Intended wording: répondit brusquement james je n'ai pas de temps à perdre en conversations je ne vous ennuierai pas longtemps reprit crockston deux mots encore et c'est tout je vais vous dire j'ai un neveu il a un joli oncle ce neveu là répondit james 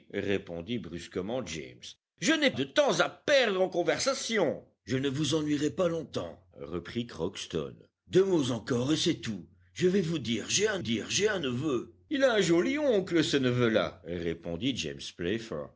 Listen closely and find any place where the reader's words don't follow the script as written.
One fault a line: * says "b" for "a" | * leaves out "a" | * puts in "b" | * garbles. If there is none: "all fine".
* leaves out "pas"
* puts in "dire j'ai un"